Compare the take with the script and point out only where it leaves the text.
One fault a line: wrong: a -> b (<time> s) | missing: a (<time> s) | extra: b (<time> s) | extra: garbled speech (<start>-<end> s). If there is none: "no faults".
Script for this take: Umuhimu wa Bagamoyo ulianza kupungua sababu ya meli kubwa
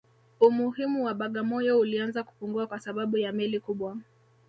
extra: kwa (2.7 s)